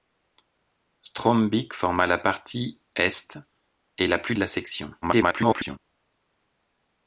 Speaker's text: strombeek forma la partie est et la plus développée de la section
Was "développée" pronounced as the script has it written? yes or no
no